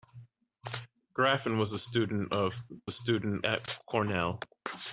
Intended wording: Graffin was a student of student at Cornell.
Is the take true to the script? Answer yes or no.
yes